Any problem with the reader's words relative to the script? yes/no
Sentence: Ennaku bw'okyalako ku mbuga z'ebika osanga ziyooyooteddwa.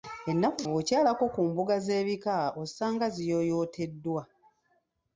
no